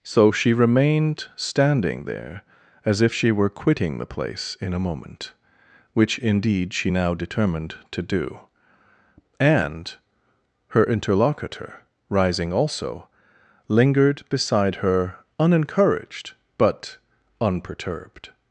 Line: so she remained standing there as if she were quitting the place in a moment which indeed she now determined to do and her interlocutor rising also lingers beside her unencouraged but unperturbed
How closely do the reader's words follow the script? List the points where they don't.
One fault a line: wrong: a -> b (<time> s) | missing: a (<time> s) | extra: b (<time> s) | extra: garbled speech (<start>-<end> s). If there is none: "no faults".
wrong: lingers -> lingered (13.7 s)